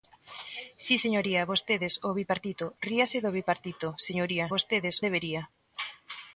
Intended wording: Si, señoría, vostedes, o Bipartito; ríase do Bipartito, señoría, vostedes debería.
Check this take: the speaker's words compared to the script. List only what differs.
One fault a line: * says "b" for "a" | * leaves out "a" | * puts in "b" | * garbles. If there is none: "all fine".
all fine